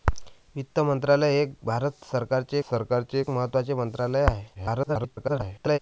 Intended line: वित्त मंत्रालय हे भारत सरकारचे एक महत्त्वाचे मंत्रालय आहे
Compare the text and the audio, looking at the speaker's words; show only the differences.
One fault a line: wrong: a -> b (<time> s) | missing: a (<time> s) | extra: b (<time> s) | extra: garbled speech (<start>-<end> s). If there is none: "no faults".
extra: सरकारचे (2.7 s)
extra: garbled speech (4.5-5.8 s)